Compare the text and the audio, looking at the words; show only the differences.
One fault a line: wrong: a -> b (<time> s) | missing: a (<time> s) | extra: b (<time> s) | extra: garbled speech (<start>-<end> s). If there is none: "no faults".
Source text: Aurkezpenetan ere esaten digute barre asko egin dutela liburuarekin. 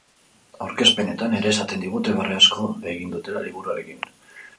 no faults